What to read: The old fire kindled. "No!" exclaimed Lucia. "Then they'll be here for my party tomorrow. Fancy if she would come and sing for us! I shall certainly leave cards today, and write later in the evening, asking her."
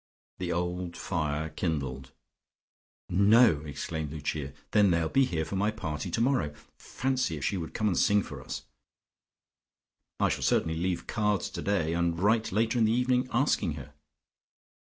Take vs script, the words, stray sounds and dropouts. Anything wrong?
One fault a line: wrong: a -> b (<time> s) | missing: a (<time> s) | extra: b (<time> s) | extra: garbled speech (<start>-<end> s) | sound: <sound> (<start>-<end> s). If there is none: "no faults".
no faults